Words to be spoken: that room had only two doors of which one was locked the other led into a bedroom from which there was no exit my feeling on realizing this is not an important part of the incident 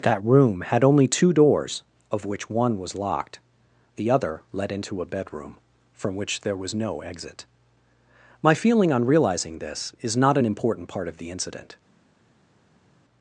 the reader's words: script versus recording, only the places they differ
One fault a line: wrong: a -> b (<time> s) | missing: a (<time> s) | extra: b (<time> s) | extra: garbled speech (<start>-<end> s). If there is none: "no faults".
no faults